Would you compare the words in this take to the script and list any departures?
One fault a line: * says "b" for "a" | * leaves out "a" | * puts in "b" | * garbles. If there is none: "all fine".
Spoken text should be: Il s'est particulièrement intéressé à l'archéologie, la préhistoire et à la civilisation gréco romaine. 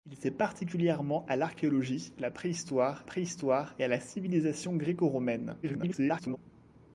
* leaves out "intéressé"
* puts in "préhistoire"
* garbles